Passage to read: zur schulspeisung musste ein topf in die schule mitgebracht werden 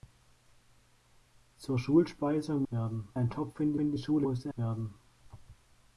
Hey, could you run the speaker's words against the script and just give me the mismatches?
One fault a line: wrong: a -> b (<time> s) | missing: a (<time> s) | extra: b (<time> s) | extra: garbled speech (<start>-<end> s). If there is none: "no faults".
wrong: musste -> werden (2.7 s)
extra: in (3.8 s)
wrong: mitgebracht -> musste (4.2 s)